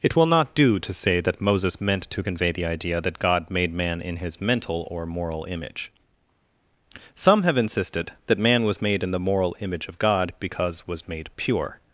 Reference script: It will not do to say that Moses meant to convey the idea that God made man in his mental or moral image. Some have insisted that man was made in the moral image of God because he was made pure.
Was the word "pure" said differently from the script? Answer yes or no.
no